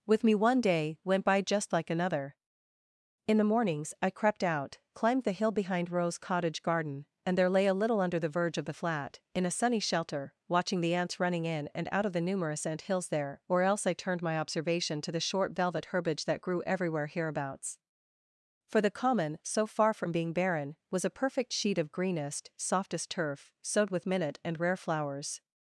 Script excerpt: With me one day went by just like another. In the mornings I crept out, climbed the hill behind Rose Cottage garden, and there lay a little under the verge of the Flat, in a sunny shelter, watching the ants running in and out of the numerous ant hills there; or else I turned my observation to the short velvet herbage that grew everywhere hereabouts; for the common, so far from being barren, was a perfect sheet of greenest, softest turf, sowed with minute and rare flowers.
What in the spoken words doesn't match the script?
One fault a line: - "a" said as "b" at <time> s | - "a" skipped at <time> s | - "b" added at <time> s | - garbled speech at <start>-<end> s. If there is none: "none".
none